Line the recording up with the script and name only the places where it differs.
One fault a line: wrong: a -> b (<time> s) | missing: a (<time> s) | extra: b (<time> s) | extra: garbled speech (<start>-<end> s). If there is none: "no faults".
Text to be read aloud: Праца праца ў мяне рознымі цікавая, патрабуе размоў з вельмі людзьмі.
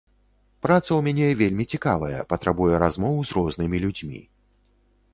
missing: праца (0.8 s)
wrong: рознымі -> вельмі (1.4 s)
wrong: вельмі -> рознымі (3.4 s)